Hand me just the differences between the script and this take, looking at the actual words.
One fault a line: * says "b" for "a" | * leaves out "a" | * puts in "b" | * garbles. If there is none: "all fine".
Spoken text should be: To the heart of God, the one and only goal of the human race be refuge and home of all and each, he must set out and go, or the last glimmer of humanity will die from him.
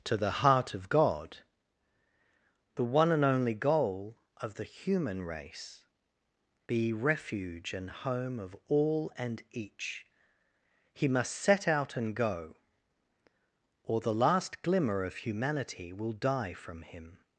all fine